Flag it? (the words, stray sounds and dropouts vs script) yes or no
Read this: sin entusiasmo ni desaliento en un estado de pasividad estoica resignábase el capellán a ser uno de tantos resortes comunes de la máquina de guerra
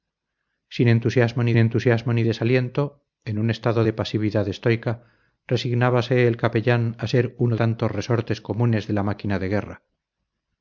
yes